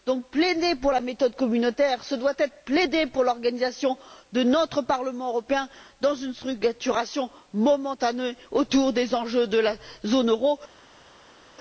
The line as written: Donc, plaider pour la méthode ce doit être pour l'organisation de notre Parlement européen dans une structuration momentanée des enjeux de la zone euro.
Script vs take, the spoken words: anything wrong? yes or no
yes